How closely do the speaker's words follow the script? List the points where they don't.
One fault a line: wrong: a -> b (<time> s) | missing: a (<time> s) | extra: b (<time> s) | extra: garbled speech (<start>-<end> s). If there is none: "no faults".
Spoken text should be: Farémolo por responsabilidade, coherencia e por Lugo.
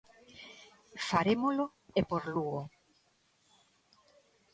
missing: por responsabilidade coherencia (1.6 s)